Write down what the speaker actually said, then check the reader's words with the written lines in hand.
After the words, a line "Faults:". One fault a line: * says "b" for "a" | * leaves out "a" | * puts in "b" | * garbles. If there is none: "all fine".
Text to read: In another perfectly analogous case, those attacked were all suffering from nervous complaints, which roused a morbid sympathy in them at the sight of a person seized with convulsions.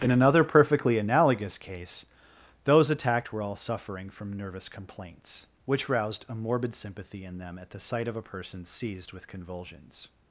In another perfectly analogous case, those attacked were all suffering from nervous complaints, which roused a morbid sympathy in them at the sight of a person seized with convulsions.
Faults:
all fine